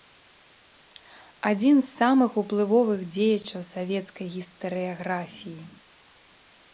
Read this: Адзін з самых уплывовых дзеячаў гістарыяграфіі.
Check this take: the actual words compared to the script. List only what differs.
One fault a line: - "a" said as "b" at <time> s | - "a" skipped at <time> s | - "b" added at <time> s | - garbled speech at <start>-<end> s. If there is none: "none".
- "савецкай" added at 3.7 s